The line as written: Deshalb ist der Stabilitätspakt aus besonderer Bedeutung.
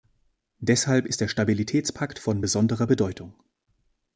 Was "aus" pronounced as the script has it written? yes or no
no